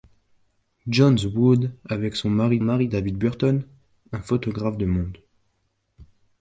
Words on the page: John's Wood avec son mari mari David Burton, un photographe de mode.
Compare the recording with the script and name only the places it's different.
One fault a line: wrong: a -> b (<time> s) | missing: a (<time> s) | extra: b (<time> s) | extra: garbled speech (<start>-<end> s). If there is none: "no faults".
no faults